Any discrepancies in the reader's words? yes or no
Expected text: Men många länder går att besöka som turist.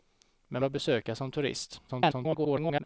yes